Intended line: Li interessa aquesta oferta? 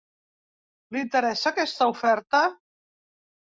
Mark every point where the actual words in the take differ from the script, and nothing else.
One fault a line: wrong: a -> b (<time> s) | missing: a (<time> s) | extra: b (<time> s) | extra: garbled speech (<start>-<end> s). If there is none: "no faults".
no faults